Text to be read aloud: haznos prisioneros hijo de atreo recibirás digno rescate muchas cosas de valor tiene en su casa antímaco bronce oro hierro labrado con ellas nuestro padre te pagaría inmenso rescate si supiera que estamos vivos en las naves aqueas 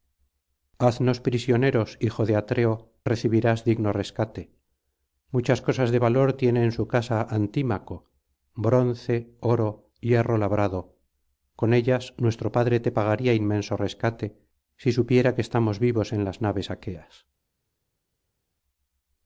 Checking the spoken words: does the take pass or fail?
pass